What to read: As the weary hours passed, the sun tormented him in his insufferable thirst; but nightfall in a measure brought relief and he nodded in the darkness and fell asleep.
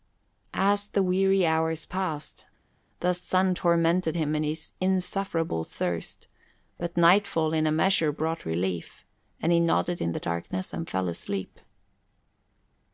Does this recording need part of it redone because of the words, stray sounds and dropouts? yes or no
no